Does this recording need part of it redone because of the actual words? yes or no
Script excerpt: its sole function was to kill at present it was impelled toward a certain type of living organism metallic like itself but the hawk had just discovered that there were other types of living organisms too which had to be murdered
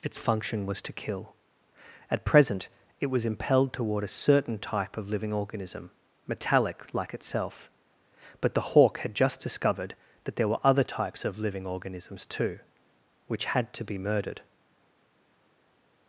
yes